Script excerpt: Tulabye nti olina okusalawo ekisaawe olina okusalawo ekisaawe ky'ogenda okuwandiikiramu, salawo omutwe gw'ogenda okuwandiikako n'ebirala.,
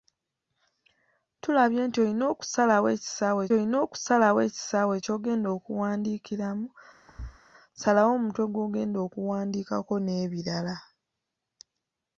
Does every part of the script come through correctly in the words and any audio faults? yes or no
no